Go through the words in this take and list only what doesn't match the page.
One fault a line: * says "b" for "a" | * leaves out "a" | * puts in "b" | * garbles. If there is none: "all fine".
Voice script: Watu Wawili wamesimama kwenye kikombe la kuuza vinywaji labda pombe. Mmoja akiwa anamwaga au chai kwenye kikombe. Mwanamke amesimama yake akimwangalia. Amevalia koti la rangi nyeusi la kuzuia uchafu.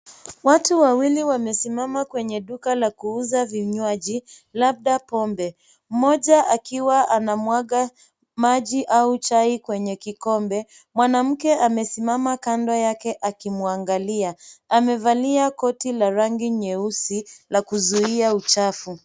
* says "duka" for "kikombe"
* puts in "maji"
* puts in "kando"